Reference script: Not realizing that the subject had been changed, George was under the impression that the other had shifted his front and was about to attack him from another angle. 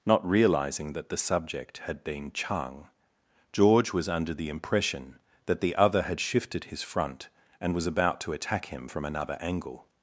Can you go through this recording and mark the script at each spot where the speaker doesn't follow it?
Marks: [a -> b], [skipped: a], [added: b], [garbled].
Not realizing that the subject had been [changed, -> chang] George was under the impression that the other had shifted his front and was about to attack him from another angle.